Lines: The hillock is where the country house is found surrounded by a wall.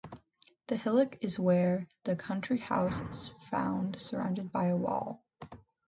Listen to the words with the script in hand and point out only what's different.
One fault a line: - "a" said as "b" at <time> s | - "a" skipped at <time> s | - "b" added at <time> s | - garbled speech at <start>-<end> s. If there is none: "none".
none